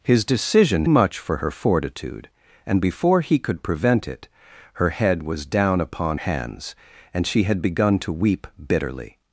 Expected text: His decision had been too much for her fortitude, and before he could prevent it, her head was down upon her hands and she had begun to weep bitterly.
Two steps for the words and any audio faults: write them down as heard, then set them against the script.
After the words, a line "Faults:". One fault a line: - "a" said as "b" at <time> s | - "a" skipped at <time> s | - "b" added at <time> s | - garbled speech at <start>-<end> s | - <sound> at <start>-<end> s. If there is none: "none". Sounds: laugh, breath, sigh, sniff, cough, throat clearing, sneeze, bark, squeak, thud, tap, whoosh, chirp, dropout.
His decision much for her fortitude, and before he could prevent it, her head was down upon hands and she had begun to weep bitterly.
Faults:
- "had been too" skipped at 0.8 s
- "her" skipped at 6.2 s